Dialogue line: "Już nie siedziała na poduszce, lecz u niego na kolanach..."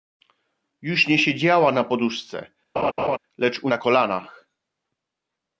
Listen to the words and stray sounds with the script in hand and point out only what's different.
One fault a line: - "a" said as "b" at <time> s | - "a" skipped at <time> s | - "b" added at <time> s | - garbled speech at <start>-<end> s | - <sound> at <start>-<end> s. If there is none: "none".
- laugh at 2.8-3.2 s
- "niego" skipped at 3.7 s